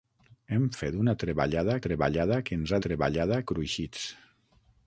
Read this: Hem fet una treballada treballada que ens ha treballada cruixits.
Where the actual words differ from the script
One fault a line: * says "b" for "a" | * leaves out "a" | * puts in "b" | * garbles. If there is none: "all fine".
all fine